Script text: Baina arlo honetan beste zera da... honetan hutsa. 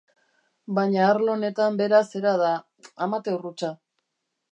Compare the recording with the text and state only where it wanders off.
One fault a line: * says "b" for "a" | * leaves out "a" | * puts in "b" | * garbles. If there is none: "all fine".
* says "bera" for "beste"
* says "amateur" for "honetan"